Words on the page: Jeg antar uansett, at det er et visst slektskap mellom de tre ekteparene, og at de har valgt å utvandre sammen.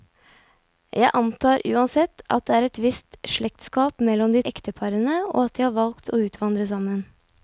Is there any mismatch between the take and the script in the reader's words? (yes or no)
yes